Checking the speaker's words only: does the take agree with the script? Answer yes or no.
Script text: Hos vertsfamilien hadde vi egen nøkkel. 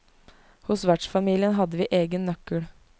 yes